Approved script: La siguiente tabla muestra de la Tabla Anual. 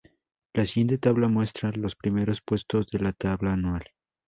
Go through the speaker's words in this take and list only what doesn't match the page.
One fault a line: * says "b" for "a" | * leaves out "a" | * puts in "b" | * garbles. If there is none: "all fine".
* puts in "los primeros puestos"